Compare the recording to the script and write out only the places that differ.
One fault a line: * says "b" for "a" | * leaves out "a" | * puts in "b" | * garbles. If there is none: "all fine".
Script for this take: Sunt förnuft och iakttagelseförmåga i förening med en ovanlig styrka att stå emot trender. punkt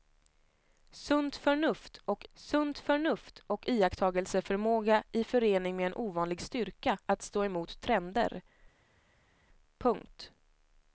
* puts in "sunt förnuft och"